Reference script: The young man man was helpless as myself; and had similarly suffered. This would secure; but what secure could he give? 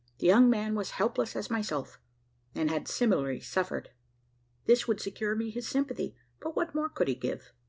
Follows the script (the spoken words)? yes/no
no